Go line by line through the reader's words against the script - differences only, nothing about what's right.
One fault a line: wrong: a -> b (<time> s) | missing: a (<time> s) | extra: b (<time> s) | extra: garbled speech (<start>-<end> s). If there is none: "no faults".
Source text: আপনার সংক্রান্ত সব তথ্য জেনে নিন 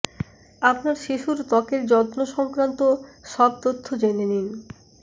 extra: শিশুর ত্বকের যত্ন (1.0 s)